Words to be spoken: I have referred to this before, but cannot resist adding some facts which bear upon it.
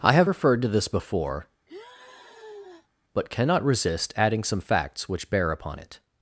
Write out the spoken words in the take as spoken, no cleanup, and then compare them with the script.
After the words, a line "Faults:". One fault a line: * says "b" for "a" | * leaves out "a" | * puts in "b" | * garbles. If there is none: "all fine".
I have referred to this before, but cannot resist adding some facts which bear upon it.
Faults:
all fine